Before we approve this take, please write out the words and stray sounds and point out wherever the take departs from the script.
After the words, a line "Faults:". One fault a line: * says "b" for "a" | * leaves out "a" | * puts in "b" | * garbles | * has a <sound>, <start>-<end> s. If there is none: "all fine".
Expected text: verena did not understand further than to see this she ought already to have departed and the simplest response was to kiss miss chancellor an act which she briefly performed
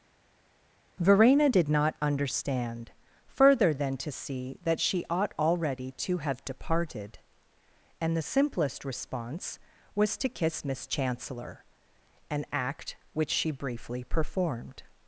verena did not understand further than to see that she ought already to have departed and the simplest response was to kiss miss chancellor an act which she briefly performed
Faults:
* says "that" for "this"